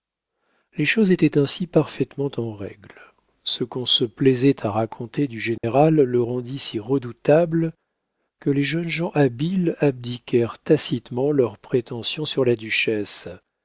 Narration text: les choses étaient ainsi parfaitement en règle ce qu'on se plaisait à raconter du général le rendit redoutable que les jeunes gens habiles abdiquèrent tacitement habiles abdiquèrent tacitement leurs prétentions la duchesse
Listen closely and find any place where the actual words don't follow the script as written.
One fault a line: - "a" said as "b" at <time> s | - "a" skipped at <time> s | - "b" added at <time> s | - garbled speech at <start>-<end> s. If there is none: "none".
- "si" added at 6.6 s
- "habiles abdiquèrent tacitement" skipped at 11.3 s
- "sur" added at 12.3 s